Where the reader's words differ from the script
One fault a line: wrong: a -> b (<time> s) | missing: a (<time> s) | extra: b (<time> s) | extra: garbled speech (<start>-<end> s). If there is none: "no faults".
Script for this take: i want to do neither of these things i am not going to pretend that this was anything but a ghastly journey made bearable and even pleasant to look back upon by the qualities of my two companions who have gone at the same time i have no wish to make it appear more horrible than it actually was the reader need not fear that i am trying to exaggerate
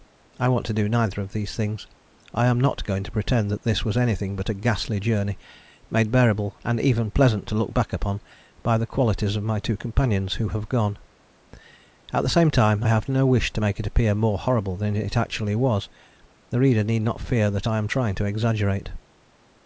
missing: i (12.8 s)